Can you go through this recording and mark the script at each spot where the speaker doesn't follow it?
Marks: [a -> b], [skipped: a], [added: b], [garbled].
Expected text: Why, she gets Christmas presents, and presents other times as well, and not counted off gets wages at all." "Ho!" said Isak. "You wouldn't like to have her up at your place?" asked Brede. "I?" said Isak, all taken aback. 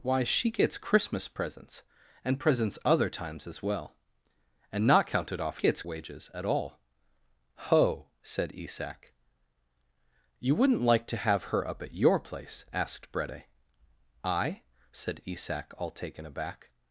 Why, she gets Christmas presents, and presents other times as well, and not counted off gets wages at all." "Ho!" said Isak. "You wouldn't like to have her up at your place?" asked Brede. "I?" said Isak, all taken aback.